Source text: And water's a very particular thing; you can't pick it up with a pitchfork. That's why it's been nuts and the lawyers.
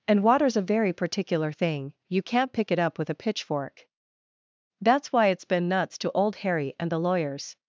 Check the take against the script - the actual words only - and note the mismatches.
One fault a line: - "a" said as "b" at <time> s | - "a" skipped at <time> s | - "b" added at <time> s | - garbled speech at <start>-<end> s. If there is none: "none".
- "to Old Harry" added at 6.0 s